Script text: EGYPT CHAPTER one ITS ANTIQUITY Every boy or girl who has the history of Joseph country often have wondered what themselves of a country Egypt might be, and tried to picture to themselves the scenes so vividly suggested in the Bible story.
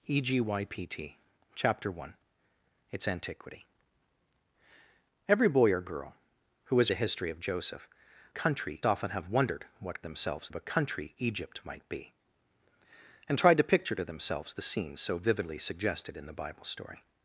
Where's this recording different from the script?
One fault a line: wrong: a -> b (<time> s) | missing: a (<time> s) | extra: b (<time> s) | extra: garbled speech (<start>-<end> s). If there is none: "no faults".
no faults